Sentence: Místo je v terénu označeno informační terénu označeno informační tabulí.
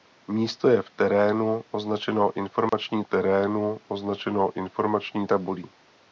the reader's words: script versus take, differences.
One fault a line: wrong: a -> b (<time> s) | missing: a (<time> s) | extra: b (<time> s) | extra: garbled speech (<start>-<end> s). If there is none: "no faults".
no faults